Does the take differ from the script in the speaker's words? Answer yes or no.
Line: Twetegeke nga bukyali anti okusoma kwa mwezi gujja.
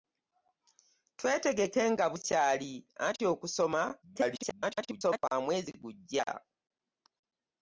yes